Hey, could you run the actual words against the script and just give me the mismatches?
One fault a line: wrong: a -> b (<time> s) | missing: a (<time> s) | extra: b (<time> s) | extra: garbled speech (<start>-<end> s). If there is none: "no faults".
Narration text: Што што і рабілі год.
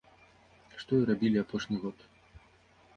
missing: што (0.9 s)
extra: апошні (1.4 s)